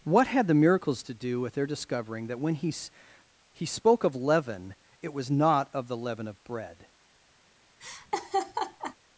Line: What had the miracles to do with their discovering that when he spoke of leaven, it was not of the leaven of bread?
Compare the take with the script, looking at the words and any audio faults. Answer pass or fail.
fail